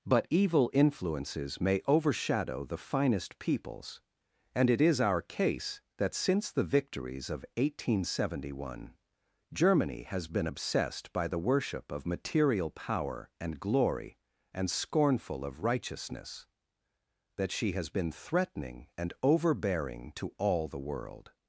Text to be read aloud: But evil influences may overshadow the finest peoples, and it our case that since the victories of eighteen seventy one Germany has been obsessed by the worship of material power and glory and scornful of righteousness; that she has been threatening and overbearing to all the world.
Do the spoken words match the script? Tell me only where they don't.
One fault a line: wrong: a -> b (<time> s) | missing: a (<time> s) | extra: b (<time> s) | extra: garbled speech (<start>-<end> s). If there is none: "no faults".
extra: is (4.8 s)